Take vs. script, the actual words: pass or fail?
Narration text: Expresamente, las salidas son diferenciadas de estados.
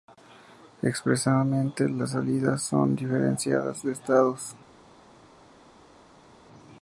pass